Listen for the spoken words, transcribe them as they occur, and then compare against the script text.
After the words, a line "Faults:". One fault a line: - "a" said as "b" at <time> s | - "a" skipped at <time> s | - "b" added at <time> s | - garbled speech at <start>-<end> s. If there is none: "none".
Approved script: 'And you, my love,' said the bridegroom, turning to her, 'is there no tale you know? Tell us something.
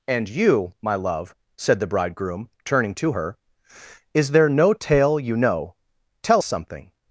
'And you, my love,' said the bridegroom, turning to her, 'is there no tale you know? Tell something.
Faults:
- "us" skipped at 6.4 s